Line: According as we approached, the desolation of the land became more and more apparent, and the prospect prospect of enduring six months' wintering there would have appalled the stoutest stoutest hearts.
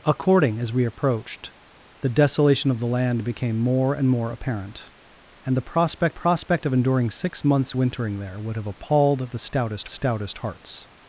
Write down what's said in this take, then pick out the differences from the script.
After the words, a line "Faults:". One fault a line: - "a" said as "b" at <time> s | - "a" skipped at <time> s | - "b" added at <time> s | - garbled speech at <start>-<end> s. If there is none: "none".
According as we approached, the desolation of the land became more and more apparent, and the prospect prospect of enduring six months' wintering there would have appalled the stoutest stoutest hearts.
Faults:
none